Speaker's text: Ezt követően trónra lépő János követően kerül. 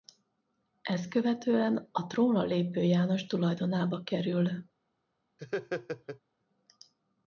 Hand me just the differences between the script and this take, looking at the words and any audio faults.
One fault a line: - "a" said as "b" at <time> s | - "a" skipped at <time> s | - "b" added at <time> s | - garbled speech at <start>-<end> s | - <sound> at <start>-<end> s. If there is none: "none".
- "a" added at 1.9 s
- "követően" said as "tulajdonába" at 3.2 s
- laugh at 5.4-6.2 s